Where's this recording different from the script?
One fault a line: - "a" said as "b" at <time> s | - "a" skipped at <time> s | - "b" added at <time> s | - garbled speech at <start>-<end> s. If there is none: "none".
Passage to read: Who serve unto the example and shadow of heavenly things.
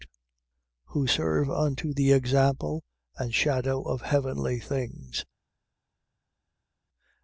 none